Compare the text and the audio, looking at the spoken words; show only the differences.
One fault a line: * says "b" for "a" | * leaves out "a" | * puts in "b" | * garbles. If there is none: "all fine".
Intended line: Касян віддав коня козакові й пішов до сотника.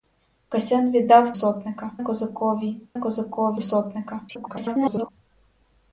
* says "сотника" for "коня"
* says "козакові" for "пішов"
* garbles